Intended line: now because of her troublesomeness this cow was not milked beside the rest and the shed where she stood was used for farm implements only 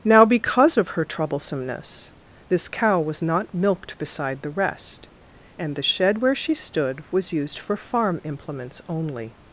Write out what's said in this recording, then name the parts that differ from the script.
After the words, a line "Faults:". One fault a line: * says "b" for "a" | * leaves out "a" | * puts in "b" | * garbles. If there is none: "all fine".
now because of her troublesomeness this cow was not milked beside the rest and the shed where she stood was used for farm implements only
Faults:
all fine